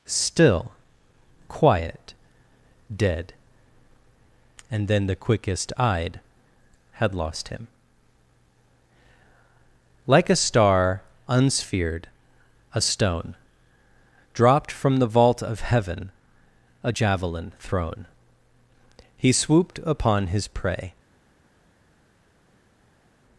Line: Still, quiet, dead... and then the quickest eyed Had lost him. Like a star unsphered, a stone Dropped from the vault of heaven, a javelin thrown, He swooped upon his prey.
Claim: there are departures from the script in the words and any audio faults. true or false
false